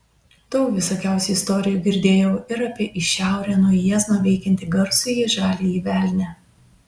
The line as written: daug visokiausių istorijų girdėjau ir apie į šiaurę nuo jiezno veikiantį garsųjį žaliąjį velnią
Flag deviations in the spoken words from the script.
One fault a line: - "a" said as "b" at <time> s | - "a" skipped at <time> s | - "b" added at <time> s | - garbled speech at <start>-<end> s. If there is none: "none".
none